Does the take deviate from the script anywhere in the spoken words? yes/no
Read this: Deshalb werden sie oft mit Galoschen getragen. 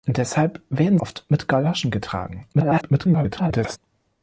yes